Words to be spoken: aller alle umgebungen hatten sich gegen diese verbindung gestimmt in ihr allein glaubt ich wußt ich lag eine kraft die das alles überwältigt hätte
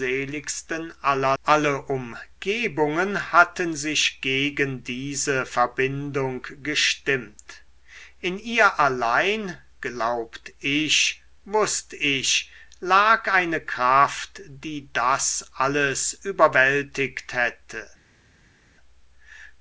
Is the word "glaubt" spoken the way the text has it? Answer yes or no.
yes